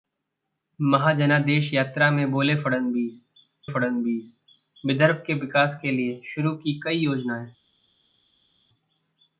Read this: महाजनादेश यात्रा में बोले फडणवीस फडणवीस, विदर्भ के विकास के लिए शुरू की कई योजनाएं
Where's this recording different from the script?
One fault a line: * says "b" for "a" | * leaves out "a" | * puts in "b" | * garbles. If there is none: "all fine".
all fine